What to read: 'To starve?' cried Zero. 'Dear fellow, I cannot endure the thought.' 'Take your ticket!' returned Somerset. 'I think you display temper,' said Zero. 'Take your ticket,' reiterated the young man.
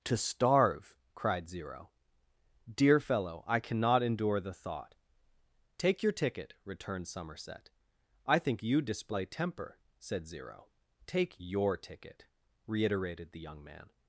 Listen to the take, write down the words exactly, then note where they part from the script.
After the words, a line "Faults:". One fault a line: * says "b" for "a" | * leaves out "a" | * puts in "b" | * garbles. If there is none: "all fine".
'To starve?' cried Zero. 'Dear fellow, I cannot endure the thought.' 'Take your ticket!' returned Somerset. 'I think you display temper,' said Zero. 'Take your ticket,' reiterated the young man.
Faults:
all fine